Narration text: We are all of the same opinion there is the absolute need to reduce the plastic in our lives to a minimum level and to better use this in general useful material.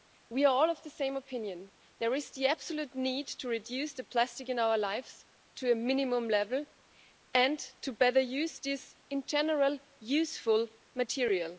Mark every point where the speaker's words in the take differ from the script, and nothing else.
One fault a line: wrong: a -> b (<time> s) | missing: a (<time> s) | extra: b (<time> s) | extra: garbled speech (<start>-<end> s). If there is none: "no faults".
no faults